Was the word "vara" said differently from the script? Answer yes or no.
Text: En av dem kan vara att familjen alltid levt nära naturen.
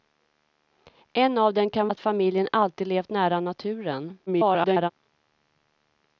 yes